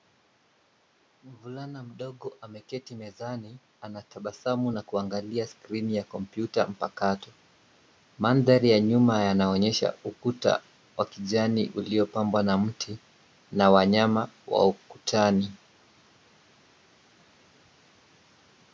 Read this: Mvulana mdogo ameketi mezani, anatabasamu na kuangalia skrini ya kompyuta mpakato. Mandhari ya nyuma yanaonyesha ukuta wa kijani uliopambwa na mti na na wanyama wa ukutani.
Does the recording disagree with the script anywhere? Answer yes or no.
yes